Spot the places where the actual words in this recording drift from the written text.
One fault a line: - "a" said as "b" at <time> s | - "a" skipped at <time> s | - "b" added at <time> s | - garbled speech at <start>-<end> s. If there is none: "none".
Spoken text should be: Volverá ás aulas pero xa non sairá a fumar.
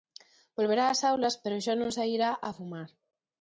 none